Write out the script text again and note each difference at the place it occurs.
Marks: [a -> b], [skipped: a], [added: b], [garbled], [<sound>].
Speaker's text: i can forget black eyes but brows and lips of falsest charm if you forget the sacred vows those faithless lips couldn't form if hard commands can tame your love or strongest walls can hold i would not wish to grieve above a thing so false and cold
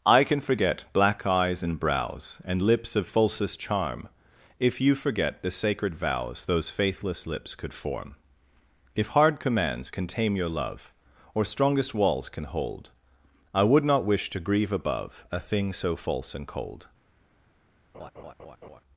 i can forget black eyes [but -> and] brows and lips of falsest charm if you forget the sacred vows those faithless lips [couldn't -> could] form if hard commands can tame your love or strongest walls can hold i would not wish to grieve above a thing so false and cold [laugh]